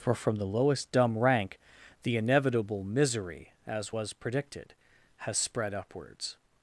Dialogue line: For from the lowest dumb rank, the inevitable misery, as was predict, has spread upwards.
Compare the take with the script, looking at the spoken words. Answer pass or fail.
fail